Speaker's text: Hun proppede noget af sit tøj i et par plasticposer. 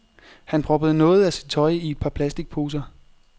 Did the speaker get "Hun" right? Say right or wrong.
wrong